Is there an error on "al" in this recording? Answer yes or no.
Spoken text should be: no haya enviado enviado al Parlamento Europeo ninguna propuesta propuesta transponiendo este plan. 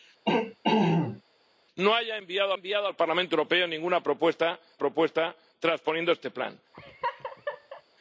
no